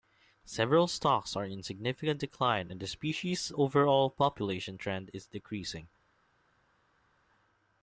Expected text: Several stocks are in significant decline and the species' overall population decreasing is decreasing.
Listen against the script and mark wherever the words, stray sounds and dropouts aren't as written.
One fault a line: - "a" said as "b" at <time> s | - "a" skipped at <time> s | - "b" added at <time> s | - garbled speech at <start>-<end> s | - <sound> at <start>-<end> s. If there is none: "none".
- "decreasing" said as "trend" at 4.8 s